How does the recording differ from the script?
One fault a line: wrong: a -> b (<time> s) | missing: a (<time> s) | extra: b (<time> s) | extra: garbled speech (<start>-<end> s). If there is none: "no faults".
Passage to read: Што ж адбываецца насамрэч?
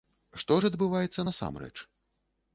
no faults